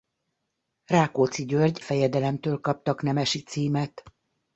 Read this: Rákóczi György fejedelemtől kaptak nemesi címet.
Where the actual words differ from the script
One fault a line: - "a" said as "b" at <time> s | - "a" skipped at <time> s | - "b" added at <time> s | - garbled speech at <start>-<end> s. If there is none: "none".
none